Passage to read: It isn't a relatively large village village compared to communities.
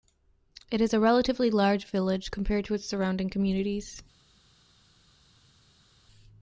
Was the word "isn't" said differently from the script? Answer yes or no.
yes